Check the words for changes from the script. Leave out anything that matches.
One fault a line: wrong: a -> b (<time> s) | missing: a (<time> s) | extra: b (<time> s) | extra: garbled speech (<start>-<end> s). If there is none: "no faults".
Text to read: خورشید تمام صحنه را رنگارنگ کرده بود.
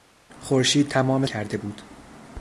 missing: صحنه را رنگارنگ (1.2 s)